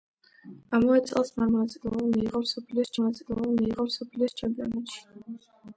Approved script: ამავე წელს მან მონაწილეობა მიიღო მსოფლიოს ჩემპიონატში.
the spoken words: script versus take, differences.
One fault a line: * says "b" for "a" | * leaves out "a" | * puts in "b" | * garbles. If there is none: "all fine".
* puts in "მონაწილეობა მიიღო მსოფლიოს"